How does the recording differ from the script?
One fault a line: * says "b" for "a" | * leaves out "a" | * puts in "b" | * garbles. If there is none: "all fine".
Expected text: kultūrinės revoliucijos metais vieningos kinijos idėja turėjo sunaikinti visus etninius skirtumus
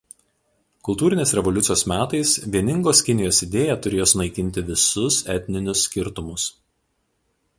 all fine